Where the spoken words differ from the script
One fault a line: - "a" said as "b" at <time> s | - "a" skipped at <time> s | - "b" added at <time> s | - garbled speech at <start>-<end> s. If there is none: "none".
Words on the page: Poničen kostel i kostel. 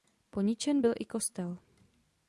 - "kostel" said as "byl" at 0.8 s